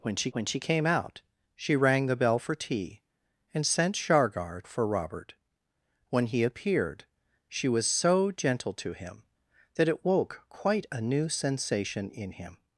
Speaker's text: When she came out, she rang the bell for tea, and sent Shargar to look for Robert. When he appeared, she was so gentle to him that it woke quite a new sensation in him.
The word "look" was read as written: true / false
false